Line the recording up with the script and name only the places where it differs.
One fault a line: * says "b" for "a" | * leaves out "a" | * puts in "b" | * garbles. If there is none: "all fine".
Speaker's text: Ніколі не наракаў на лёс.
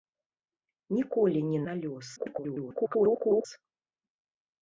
* leaves out "наракаў"
* garbles